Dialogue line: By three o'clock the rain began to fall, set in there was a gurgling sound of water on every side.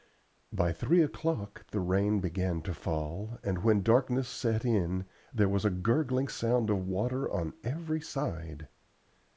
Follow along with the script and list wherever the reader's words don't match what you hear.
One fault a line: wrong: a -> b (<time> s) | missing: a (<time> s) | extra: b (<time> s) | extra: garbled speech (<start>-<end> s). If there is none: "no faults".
extra: and when darkness (3.4 s)